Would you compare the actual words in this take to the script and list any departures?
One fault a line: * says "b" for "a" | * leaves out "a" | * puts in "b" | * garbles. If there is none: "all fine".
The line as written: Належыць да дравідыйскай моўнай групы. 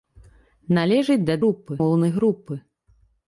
* says "групы" for "дравідыйскай"